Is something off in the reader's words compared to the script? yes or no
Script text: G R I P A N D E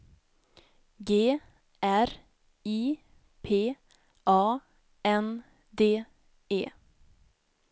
no